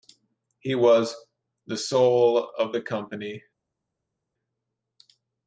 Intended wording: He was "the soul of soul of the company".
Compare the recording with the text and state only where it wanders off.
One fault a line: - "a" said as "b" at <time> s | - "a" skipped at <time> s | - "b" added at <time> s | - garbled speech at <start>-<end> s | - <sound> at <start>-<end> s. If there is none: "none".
- "soul of" skipped at 2.8 s